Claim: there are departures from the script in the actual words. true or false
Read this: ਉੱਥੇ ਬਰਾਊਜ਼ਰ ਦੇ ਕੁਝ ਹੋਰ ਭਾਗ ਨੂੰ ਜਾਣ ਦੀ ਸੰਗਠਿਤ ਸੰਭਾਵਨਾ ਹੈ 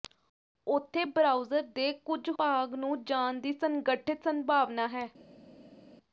true